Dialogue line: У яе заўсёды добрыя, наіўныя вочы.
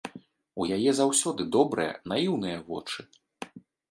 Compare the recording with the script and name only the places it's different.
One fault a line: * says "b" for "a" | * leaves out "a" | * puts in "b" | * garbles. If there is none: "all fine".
all fine